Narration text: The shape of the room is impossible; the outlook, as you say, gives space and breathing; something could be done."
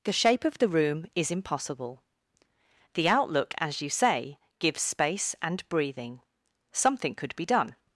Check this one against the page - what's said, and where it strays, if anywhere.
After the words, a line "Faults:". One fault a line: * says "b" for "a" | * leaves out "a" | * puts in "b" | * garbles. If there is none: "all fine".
The shape of the room is impossible; the outlook, as you say, gives space and breathing; something could be done."
Faults:
all fine